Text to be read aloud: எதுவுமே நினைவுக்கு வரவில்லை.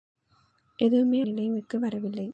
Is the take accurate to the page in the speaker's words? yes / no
yes